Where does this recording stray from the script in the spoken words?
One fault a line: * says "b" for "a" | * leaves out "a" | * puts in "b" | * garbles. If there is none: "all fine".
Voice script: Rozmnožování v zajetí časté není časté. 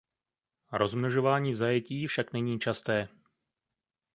* says "však" for "časté"